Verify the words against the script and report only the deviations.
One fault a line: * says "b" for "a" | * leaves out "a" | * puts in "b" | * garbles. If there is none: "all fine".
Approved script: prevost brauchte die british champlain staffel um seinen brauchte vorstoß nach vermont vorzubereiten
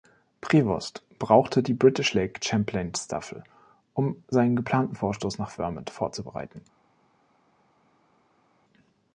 * puts in "lake"
* says "geplanten" for "brauchte"